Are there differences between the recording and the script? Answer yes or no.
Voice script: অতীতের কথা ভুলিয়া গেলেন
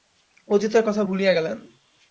no